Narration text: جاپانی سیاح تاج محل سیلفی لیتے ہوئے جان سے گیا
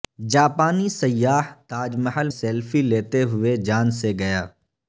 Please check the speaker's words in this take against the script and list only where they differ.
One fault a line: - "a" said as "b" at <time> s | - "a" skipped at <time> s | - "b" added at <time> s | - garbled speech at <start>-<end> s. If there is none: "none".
none